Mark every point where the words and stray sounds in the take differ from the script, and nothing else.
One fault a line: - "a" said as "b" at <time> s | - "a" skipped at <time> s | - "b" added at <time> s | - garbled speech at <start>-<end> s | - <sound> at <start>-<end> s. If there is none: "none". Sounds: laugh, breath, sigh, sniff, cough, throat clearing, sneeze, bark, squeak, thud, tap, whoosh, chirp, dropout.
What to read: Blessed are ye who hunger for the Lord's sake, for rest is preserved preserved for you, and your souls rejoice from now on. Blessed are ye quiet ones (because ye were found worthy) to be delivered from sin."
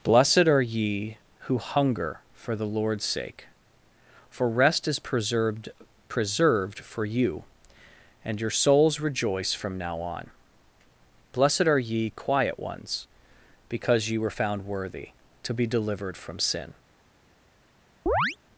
- chirp at 18.1-18.4 s